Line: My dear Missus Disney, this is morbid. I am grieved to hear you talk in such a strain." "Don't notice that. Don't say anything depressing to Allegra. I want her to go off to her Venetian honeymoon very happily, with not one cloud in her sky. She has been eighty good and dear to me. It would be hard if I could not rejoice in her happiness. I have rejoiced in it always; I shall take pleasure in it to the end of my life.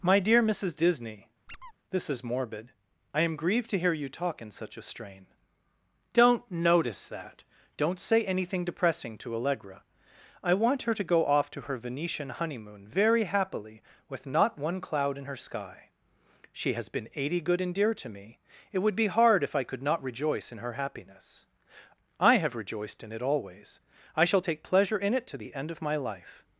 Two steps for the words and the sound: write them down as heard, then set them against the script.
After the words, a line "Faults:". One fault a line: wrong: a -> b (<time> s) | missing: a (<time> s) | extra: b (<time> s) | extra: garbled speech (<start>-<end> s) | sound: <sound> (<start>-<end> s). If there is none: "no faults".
My dear Missus Disney, this is morbid. I am grieved to hear you talk in such a strain." "Don't notice that. Don't say anything depressing to Allegra. I want her to go off to her Venetian honeymoon very happily, with not one cloud in her sky. She has been eighty good and dear to me. It would be hard if I could not rejoice in her happiness. I have rejoiced in it always; I shall take pleasure in it to the end of my life.
Faults:
sound: squeak (1.5-1.7 s)